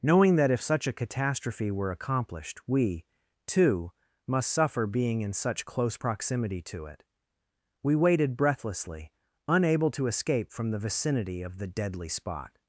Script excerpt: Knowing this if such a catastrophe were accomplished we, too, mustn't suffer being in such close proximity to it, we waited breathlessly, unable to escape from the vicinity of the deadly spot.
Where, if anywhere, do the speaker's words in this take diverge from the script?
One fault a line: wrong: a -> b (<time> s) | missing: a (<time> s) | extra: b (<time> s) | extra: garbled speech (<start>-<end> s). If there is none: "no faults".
wrong: this -> that (0.3 s)
wrong: mustn't -> must (4.2 s)